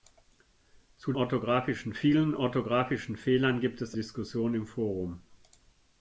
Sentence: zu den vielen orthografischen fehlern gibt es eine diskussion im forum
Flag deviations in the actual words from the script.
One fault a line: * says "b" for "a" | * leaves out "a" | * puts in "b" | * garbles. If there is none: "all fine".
* says "orthografischen" for "den"
* leaves out "eine"